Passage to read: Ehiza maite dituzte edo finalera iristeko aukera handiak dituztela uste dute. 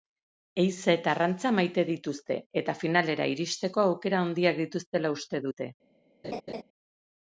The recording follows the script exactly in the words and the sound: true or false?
false